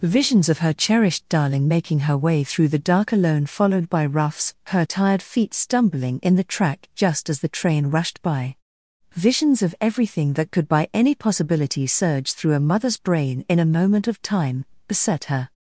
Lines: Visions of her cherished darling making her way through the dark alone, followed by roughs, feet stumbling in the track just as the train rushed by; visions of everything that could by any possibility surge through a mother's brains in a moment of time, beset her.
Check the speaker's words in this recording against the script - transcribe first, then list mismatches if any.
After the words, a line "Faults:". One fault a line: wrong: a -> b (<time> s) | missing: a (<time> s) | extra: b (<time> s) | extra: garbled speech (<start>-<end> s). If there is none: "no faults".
Visions of her cherished darling making her way through the dark alone, followed by roughs, her tired feet stumbling in the track just as the train rushed by; visions of everything that could by any possibility surge through a mother's brain in a moment of time, beset her.
Faults:
extra: her tired (4.7 s)
wrong: brains -> brain (12.9 s)